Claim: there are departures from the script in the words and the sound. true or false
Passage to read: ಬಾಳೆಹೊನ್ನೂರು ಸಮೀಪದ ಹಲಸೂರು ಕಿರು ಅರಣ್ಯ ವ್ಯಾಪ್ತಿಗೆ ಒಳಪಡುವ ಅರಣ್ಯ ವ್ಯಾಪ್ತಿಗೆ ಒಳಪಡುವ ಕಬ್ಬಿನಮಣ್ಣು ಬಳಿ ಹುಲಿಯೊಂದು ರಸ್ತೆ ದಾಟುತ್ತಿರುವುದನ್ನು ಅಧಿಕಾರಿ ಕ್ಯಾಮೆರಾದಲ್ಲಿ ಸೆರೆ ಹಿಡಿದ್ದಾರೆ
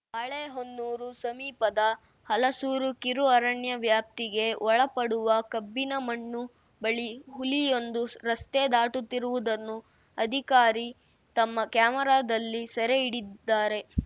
true